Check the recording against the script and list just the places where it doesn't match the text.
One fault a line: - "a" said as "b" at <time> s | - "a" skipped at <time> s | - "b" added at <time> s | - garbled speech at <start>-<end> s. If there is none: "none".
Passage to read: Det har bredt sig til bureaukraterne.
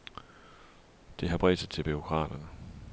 none